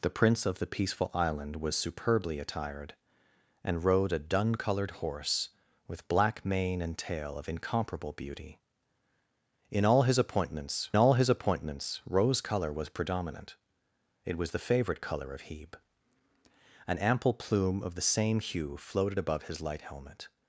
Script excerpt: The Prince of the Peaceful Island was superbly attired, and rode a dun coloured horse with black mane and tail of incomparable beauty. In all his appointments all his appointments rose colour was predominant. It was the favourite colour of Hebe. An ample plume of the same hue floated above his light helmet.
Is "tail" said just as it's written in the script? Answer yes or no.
yes